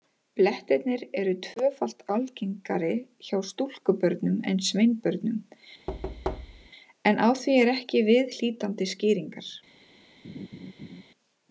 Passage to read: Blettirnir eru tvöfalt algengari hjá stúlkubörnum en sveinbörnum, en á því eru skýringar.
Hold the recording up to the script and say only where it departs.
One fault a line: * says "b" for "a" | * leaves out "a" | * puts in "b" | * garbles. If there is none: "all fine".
* puts in "ekki viðhlítandi"